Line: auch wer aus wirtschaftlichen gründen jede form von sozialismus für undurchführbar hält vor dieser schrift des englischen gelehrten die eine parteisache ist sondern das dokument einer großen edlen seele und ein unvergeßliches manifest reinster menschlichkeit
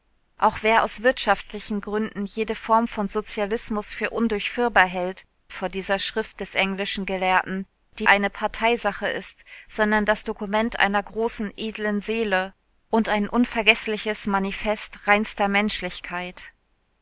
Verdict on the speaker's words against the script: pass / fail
pass